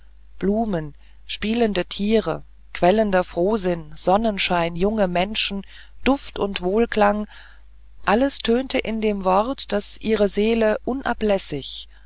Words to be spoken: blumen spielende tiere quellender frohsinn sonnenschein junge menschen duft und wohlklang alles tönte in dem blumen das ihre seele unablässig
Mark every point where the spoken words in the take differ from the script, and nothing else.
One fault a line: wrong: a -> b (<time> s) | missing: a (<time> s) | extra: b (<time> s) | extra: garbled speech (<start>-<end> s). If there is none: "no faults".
wrong: blumen -> wort (9.2 s)